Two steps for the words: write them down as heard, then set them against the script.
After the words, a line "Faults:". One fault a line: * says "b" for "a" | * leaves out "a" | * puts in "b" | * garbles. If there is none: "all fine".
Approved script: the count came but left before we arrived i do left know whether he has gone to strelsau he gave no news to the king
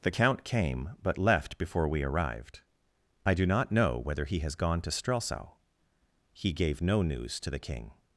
the count came but left before we arrived i do not know whether he has gone to strelsau he gave no news to the king
Faults:
* says "not" for "left"